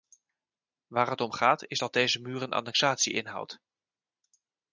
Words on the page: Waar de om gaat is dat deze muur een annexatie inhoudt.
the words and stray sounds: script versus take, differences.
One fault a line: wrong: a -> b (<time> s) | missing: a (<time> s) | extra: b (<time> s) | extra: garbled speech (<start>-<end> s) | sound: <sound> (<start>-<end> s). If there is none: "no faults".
wrong: de -> het (1.1 s)